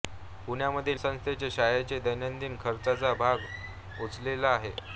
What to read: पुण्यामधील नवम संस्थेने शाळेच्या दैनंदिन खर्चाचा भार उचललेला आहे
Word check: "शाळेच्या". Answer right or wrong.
right